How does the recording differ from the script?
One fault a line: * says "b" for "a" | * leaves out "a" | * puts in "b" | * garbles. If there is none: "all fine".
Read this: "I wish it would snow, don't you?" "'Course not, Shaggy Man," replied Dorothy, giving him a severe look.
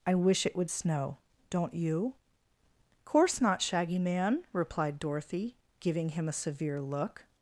all fine